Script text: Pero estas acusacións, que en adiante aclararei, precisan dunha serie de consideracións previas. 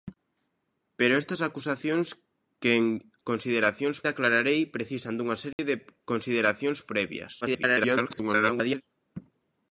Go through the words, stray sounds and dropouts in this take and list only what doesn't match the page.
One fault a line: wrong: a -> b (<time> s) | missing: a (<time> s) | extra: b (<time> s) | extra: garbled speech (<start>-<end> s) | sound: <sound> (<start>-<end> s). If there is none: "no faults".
wrong: adiante -> consideracións (3.3 s)
sound: dropout (5.5-5.6 s)
extra: garbled speech (7.4-8.8 s)